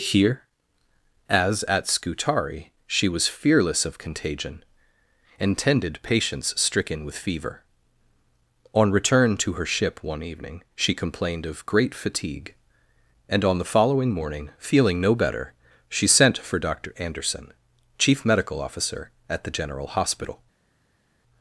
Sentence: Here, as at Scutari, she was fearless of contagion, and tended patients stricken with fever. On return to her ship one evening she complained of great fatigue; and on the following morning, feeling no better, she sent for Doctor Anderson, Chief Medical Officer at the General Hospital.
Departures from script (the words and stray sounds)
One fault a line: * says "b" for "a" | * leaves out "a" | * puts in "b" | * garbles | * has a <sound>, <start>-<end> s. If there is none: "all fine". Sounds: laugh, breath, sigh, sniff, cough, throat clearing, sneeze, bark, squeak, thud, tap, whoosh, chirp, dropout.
all fine